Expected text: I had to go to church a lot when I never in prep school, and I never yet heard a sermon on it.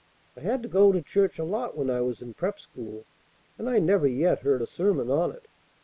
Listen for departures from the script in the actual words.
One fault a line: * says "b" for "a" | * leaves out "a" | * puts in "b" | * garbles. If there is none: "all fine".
* says "was" for "never"